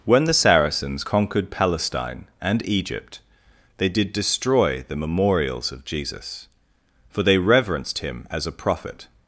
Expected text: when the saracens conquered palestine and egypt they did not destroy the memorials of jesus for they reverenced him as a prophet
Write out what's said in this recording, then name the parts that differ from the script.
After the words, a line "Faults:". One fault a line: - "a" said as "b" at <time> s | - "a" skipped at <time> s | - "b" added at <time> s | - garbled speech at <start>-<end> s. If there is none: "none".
when the saracens conquered palestine and egypt they did destroy the memorials of jesus for they reverenced him as a prophet
Faults:
- "not" skipped at 4.1 s